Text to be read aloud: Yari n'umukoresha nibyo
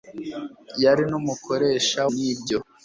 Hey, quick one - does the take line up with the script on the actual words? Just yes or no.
yes